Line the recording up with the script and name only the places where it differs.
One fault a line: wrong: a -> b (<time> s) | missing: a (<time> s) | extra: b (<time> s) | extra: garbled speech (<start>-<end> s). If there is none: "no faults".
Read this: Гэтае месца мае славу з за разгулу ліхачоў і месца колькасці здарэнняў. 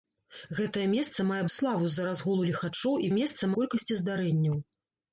no faults